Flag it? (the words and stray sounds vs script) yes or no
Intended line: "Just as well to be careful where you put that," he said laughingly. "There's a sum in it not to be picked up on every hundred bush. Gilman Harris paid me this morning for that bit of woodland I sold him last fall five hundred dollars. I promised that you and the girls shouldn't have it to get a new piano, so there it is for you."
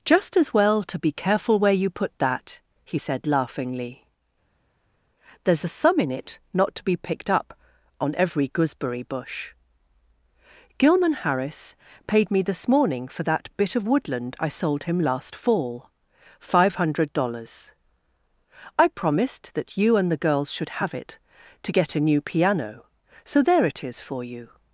yes